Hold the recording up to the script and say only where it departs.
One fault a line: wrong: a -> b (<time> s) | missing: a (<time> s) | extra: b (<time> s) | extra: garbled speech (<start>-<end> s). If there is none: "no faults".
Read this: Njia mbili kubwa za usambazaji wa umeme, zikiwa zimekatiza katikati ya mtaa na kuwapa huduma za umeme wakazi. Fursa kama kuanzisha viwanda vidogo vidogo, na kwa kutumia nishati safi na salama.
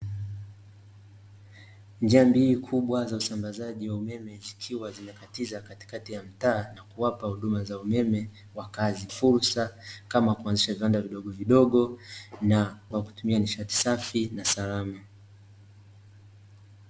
no faults